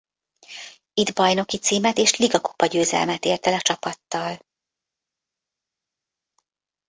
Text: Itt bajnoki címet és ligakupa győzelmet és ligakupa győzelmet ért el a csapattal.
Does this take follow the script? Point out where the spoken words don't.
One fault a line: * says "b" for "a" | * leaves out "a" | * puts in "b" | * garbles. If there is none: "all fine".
* leaves out "és ligakupa győzelmet"